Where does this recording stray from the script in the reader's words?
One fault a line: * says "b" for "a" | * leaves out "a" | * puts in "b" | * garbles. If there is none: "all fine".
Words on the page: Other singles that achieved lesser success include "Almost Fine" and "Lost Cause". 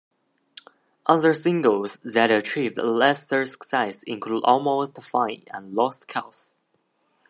all fine